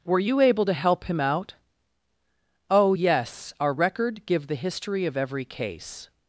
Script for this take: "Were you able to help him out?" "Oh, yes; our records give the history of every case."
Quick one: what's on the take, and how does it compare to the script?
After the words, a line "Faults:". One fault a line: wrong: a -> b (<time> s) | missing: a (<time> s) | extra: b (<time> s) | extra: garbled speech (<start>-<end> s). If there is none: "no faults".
"Were you able to help him out?" "Oh, yes; our record give the history of every case."
Faults:
wrong: records -> record (3.7 s)